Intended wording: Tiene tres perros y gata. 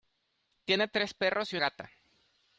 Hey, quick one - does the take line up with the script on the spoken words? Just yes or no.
yes